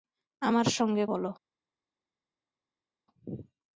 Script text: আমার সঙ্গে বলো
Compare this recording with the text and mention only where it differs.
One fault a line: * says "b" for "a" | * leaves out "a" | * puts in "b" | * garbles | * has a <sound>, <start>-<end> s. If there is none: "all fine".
all fine